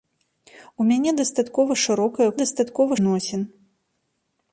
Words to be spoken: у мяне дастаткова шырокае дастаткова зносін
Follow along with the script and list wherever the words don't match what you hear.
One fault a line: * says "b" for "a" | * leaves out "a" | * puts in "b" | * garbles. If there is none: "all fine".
all fine